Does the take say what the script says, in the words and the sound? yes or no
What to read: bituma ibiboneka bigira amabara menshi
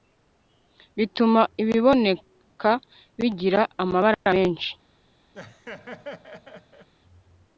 no